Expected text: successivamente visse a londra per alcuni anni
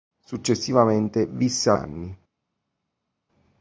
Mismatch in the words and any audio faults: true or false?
true